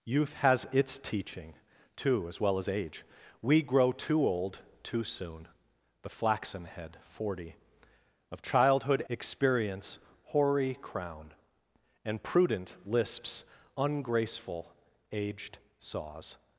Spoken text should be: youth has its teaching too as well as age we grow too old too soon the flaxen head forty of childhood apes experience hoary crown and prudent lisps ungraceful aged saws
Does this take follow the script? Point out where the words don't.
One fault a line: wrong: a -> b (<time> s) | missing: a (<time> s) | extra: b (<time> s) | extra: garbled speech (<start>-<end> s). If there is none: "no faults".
missing: apes (9.1 s)